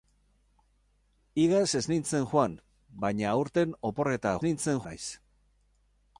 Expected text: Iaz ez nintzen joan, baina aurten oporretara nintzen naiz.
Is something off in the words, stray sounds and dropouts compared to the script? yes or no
no